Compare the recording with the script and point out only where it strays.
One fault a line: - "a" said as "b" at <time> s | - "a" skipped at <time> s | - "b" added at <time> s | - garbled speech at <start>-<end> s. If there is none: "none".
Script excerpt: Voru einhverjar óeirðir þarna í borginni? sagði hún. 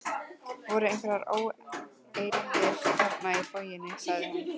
none